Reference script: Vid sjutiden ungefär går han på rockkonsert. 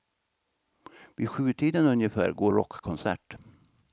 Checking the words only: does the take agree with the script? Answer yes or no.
no